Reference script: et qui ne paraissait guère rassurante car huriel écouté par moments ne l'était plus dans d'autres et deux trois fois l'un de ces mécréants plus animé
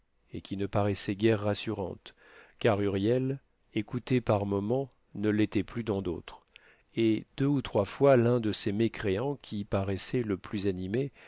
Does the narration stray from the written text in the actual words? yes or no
yes